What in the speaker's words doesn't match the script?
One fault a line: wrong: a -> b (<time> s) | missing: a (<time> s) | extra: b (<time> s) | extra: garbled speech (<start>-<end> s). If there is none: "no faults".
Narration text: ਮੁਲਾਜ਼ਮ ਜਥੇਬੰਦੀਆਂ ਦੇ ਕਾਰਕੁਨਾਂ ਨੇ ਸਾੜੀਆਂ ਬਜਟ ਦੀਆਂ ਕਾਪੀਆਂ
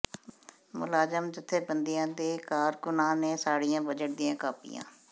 no faults